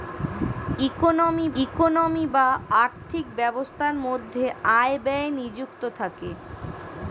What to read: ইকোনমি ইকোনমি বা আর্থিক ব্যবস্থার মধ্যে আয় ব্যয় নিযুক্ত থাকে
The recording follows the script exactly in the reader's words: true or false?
true